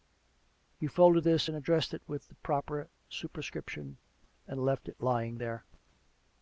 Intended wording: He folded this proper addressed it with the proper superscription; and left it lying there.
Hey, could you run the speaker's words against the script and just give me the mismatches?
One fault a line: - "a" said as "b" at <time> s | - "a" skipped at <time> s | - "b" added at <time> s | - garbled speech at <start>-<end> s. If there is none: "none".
- "proper" said as "and" at 1.5 s